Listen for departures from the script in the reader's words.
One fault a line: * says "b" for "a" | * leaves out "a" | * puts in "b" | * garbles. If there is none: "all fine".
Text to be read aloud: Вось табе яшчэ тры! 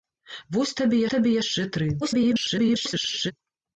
* puts in "табе"
* garbles